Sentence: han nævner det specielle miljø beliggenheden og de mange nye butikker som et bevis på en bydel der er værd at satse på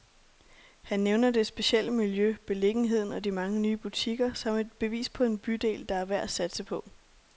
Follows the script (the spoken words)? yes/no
yes